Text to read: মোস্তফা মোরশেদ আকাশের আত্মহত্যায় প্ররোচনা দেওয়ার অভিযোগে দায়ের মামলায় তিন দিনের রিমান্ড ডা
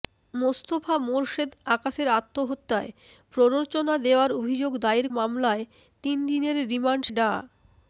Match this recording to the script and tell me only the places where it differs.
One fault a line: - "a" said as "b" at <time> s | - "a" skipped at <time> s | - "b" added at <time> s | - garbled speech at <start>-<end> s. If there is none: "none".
none